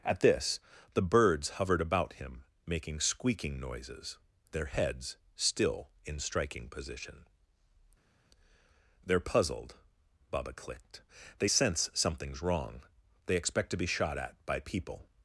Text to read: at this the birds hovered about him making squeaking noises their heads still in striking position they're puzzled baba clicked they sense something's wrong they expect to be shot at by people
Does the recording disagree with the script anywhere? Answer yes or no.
no